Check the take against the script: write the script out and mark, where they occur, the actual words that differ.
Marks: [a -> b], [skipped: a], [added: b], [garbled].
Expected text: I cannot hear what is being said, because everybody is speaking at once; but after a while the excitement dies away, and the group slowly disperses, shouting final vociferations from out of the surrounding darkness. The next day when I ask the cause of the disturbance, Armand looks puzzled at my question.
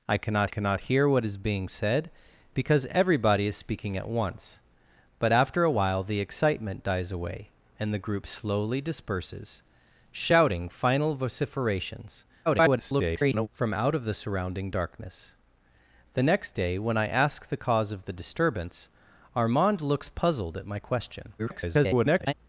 I cannot [added: cannot] hear what is being said, because everybody is speaking at once; but after a while the excitement dies away, and the group slowly disperses, shouting final vociferations [garbled] from out of the surrounding darkness. The next day when I ask the cause of the disturbance, Armand looks puzzled at my question. [garbled]